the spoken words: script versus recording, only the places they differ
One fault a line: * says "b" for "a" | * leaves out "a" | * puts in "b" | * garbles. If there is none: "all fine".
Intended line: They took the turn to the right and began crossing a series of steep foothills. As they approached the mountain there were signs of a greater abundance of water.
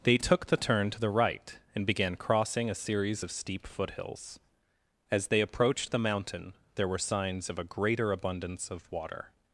all fine